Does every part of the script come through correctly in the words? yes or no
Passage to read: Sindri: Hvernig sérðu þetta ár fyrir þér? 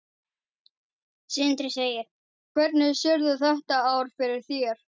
yes